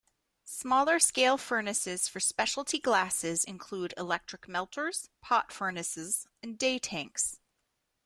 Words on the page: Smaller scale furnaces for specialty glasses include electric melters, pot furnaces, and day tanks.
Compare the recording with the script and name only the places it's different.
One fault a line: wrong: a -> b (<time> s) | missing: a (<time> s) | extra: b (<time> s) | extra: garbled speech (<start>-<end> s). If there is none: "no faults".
no faults